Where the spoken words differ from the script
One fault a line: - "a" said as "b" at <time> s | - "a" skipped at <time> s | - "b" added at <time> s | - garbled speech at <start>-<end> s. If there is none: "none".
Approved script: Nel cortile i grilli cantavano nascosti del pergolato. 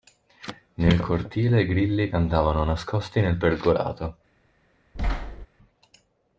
- "del" said as "nel" at 3.2 s